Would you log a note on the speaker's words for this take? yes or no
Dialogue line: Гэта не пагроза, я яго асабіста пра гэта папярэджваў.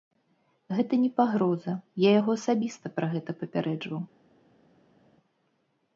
no